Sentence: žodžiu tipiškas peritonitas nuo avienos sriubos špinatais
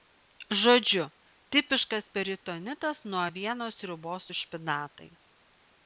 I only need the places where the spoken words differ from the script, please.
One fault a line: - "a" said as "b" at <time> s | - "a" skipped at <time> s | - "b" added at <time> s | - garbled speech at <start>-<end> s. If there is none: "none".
- "su" added at 4.3 s